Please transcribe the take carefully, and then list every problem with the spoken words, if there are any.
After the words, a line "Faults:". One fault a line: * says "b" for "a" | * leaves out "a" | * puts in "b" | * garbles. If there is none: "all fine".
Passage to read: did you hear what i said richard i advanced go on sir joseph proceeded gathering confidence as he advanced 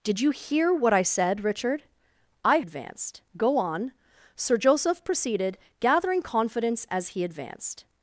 did you hear what i said richard i advanced go on sir joseph proceeded gathering confidence as he advanced
Faults:
all fine